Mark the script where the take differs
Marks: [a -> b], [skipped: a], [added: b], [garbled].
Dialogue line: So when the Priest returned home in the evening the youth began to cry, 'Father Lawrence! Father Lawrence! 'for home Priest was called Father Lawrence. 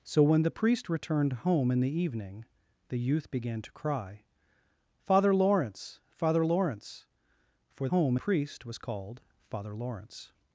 So when the Priest returned home in the evening the youth began to cry, 'Father Lawrence! Father Lawrence! 'for home Priest was called Father Lawrence.